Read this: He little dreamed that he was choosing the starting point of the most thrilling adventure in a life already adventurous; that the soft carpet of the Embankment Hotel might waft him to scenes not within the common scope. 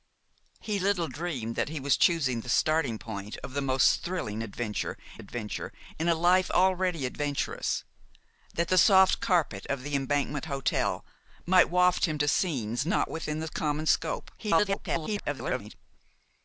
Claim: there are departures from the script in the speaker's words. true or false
true